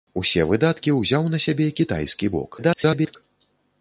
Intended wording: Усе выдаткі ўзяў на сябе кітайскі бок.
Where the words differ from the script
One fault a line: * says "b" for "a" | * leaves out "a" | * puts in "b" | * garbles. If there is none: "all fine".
* garbles